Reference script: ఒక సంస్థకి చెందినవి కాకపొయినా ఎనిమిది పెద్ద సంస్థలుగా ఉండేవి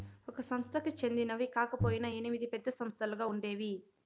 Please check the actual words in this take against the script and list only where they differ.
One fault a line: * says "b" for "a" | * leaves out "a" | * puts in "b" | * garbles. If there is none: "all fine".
all fine